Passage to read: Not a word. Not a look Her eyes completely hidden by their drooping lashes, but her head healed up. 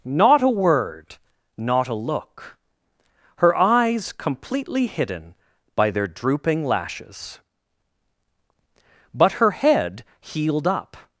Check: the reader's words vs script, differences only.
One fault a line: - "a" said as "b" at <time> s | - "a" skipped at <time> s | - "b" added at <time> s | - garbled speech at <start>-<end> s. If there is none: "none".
none